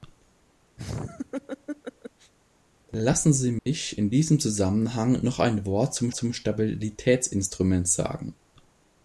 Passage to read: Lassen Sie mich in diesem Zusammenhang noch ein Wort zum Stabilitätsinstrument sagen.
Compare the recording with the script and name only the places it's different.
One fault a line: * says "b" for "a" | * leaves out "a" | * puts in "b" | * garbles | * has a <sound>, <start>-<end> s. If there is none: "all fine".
* has a laugh, 0.8-2.3 s
* has a dropout, 3.6-3.7 s
* puts in "zum"